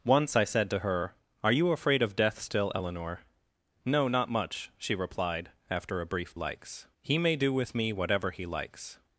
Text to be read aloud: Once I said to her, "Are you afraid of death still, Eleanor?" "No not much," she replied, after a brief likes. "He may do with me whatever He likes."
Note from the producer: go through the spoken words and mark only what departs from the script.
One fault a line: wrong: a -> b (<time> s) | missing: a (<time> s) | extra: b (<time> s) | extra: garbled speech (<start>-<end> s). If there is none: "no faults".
no faults